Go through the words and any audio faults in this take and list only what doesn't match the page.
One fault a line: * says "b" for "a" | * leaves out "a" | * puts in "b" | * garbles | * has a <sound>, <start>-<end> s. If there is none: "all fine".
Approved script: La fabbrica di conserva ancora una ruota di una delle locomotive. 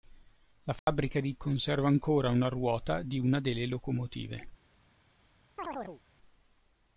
* has a dropout, 0.8-0.9 s
* has a chirp, 5.6-6.0 s